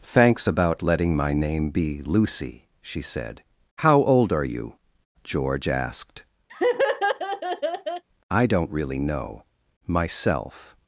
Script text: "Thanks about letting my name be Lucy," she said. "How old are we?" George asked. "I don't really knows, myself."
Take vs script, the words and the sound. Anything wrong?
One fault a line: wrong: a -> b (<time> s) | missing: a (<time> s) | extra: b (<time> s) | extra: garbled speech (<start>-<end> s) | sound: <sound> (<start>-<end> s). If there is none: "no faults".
wrong: we -> you (4.5 s)
sound: laugh (6.5-8.0 s)
wrong: knows -> know (9.0 s)